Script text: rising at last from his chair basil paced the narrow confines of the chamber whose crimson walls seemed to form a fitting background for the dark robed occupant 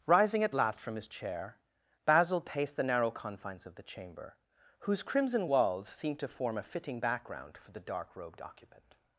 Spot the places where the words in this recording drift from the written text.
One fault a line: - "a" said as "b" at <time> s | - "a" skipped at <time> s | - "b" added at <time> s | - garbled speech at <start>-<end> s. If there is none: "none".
none